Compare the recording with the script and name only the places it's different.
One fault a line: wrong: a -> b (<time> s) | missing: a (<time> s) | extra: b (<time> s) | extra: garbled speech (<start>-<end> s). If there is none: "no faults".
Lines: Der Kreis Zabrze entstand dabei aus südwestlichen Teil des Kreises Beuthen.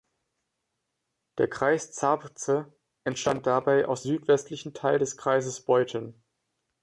no faults